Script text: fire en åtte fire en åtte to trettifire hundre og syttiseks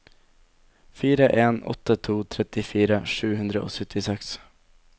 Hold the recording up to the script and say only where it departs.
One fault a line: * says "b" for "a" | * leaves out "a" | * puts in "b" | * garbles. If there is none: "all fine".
* leaves out "fire en åtte"
* puts in "sju"